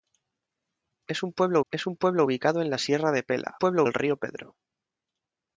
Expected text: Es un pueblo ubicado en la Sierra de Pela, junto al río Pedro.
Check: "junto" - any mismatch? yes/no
yes